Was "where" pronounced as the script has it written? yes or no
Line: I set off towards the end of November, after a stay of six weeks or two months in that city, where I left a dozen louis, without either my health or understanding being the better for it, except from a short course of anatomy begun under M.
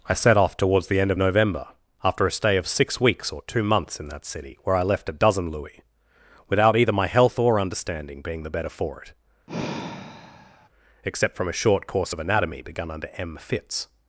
yes